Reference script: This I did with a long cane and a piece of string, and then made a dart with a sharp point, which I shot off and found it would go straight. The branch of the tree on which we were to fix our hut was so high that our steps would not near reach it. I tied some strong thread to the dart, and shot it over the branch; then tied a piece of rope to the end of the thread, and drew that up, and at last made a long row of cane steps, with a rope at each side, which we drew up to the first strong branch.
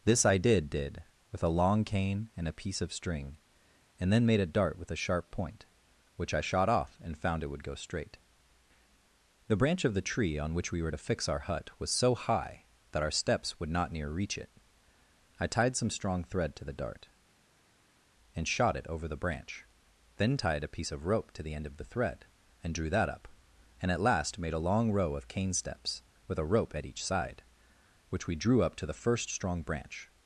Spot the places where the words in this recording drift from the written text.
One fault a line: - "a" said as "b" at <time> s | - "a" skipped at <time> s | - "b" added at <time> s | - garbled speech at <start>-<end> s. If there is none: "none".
- "did" added at 0.7 s